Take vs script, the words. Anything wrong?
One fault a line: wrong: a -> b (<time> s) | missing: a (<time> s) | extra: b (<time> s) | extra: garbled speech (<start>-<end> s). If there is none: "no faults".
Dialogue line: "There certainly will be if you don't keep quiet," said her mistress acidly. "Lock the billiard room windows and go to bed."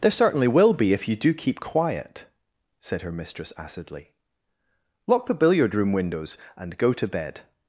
wrong: don't -> do (1.1 s)